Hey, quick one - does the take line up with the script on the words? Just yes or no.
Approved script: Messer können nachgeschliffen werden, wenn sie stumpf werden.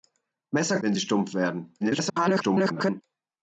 no